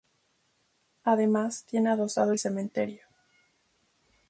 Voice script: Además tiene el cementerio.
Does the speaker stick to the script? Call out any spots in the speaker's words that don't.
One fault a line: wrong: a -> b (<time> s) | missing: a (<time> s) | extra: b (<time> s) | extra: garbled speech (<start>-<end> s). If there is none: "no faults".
extra: adosado (1.9 s)